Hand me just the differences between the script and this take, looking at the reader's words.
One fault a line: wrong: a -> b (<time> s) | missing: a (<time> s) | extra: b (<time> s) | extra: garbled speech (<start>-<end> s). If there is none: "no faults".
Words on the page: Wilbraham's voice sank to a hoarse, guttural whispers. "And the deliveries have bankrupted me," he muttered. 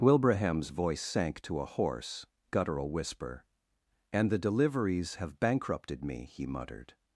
wrong: whispers -> whisper (2.9 s)